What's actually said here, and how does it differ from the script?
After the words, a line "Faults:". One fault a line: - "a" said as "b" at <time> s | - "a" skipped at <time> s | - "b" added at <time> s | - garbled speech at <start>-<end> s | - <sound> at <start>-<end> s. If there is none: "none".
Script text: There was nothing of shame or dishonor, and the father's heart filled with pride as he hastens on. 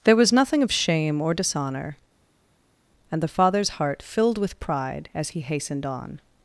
There was nothing of shame or dishonor, and the father's heart filled with pride as he hastened on.
Faults:
- "hastens" said as "hastened" at 5.4 s